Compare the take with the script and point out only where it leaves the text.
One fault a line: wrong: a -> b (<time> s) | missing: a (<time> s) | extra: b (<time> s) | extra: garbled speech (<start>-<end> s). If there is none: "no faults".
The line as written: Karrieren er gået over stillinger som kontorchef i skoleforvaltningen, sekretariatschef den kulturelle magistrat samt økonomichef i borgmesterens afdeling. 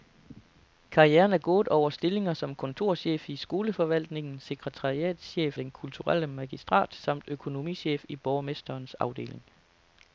no faults